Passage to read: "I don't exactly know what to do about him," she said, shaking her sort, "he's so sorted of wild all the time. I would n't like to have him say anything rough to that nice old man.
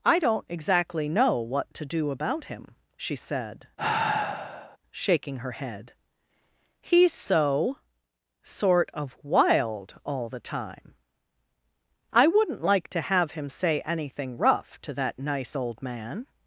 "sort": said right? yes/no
no